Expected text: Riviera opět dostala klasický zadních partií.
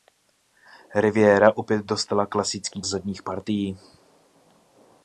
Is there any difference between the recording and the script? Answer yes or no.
no